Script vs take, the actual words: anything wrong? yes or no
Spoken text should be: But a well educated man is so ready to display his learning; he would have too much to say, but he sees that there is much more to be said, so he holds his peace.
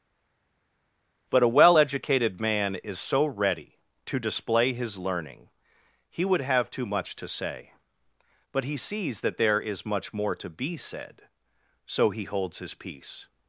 no